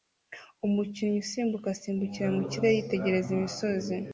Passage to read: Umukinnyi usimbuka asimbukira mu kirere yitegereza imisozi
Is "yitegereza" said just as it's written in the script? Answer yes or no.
yes